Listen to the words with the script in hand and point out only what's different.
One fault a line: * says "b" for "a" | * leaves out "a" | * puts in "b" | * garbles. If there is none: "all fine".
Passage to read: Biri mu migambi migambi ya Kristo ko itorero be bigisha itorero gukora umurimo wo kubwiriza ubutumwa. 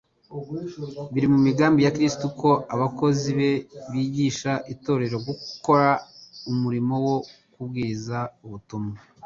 * leaves out "migambi"
* says "abakozi" for "itorero"